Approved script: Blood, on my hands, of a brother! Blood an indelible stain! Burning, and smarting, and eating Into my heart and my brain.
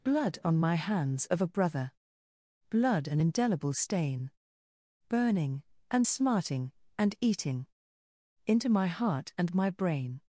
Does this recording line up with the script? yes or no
yes